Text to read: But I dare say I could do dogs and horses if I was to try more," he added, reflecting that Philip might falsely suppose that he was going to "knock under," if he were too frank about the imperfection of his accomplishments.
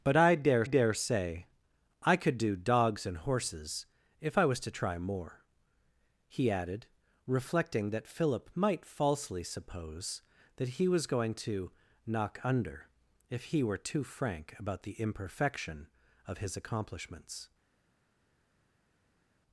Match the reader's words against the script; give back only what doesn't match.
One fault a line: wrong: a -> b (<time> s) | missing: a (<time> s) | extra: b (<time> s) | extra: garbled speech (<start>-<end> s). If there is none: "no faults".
extra: dare (0.6 s)